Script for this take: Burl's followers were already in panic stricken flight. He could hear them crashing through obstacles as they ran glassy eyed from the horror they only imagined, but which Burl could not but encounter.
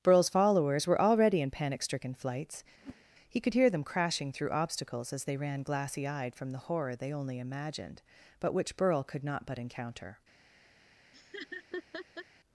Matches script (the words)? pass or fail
fail